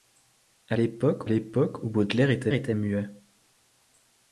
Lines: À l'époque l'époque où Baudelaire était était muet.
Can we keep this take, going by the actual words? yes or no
yes